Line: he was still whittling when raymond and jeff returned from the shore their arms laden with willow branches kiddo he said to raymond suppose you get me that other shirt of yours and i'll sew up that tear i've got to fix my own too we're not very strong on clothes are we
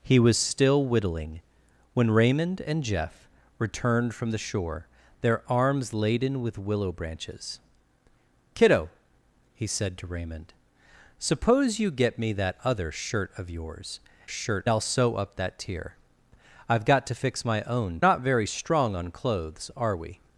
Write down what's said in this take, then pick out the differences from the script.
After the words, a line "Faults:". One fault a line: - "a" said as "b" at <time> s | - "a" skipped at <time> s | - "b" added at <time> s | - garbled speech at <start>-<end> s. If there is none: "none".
he was still whittling when raymond and jeff returned from the shore their arms laden with willow branches kiddo he said to raymond suppose you get me that other shirt of yours shirt i'll sew up that tear i've got to fix my own not very strong on clothes are we
Faults:
- "and" said as "shirt" at 14.3 s
- "too we're" skipped at 18.0 s